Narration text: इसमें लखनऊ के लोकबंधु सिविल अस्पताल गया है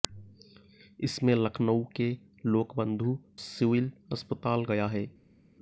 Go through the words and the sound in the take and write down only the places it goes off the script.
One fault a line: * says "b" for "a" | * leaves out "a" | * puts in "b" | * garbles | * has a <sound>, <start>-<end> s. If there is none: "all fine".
all fine